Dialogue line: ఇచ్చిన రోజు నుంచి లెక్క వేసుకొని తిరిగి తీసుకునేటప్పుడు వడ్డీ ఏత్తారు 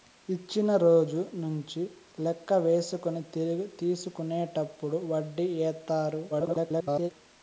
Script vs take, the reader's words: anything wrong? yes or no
yes